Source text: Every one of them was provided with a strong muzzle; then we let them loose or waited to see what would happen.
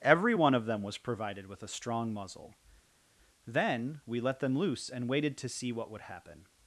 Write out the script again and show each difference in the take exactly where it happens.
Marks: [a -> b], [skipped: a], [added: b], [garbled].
Every one of them was provided with a strong muzzle; then we let them loose [or -> and] waited to see what would happen.